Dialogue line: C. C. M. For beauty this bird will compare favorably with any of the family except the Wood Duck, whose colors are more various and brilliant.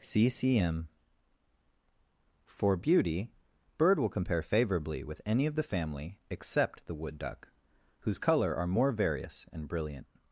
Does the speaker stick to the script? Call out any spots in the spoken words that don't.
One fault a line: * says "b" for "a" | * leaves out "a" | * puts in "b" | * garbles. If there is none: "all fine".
* leaves out "this"
* says "color" for "colors"